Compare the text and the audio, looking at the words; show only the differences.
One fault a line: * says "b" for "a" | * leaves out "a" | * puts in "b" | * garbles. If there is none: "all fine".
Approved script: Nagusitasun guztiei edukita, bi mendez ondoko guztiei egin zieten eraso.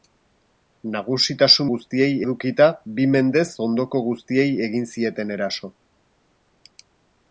all fine